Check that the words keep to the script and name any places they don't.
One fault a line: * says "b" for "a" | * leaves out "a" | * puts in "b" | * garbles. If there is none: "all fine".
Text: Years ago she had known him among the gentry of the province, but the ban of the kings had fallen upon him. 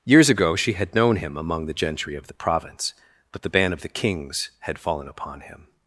all fine